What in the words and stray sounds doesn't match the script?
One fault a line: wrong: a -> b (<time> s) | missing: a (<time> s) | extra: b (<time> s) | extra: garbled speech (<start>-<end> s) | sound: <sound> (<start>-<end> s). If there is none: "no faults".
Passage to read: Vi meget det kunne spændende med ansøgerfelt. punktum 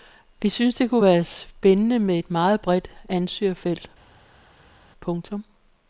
wrong: meget -> synes (0.5 s)
extra: være (1.0 s)
extra: et meget bredt (2.2 s)